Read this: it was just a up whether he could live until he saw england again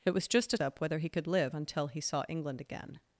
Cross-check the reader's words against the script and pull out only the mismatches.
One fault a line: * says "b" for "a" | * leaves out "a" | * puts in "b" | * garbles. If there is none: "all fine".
all fine